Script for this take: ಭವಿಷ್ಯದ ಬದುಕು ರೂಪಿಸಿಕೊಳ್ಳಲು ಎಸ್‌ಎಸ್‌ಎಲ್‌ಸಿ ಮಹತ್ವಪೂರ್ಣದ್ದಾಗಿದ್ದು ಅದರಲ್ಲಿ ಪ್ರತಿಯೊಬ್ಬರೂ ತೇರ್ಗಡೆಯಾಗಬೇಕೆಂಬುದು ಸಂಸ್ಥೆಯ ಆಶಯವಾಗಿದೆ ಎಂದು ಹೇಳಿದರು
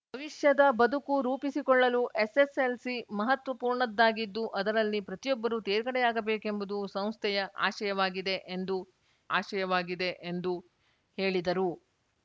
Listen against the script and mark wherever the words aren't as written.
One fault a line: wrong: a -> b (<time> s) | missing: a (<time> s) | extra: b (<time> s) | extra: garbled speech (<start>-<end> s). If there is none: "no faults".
extra: ಆಶಯವಾಗಿದೆ ಎಂದು (9.4 s)